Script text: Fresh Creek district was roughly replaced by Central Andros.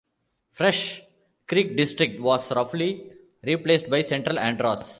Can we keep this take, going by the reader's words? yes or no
yes